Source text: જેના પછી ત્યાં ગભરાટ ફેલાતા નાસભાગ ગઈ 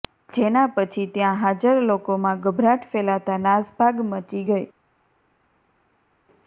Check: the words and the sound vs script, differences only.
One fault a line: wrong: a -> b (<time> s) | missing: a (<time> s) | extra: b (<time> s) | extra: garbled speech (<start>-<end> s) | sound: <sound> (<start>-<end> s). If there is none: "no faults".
extra: હાજર લોકોમાં (1.4 s)
extra: મચી (4.1 s)